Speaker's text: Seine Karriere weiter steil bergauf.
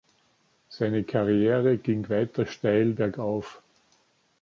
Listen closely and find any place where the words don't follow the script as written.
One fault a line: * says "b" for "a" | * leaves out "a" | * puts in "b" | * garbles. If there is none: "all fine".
* puts in "ging"